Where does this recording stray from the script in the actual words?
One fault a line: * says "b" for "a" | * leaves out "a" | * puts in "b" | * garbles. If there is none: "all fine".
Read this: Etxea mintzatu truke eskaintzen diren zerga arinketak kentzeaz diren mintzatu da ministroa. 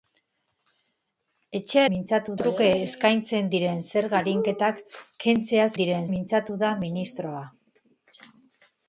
all fine